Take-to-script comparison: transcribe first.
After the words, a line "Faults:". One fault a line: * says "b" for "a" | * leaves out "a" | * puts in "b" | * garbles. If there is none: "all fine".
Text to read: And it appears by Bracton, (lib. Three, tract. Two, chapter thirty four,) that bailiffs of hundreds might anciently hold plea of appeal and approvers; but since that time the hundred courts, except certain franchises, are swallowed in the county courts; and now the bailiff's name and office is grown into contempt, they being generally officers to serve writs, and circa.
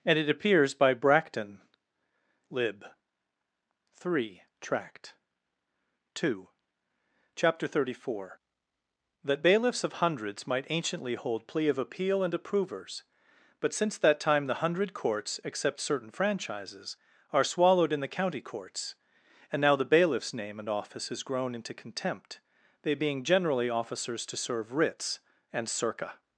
And it appears by Bracton, (lib. Three, tract. Two, chapter thirty four,) that bailiffs of hundreds might anciently hold plea of appeal and approvers; but since that time the hundred courts, except certain franchises, are swallowed in the county courts; and now the bailiff's name and office is grown into contempt, they being generally officers to serve writs, and circa.
Faults:
all fine